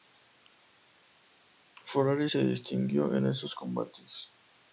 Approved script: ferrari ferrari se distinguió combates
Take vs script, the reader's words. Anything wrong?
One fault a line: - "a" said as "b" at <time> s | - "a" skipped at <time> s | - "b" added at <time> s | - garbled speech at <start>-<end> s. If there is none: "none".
- "ferrari" skipped at 2.3 s
- "en esos" added at 3.1 s